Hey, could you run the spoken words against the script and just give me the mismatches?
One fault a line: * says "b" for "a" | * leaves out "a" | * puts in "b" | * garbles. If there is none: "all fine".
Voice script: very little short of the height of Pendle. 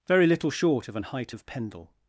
* says "an" for "the"